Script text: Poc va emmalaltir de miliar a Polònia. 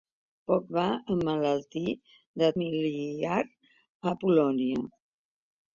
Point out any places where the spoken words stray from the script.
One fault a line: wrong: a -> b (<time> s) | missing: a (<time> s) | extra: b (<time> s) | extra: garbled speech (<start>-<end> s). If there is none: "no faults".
no faults